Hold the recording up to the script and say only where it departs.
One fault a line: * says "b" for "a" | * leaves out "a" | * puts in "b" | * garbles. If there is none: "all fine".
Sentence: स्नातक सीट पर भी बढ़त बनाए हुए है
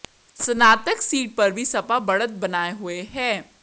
* puts in "सपा"